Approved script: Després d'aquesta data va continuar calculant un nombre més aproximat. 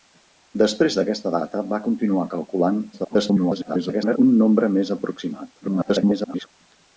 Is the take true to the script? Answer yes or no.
no